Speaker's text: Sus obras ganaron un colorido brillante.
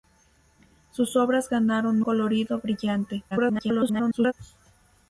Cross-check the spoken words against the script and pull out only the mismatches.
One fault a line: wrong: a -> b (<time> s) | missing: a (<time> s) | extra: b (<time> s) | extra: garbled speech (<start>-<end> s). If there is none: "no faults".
missing: un (2.0 s)
extra: garbled speech (3.3-4.3 s)